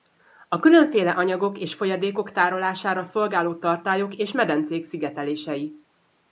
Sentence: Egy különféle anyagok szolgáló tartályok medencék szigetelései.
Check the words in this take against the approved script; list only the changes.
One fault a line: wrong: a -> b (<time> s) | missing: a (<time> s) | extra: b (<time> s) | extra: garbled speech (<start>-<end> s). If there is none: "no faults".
wrong: Egy -> A (0.5 s)
extra: és folyadékok tárolására (1.6 s)
extra: és (4.2 s)